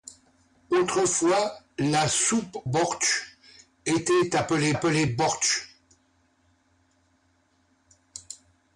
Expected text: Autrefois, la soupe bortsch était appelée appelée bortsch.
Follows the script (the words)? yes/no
yes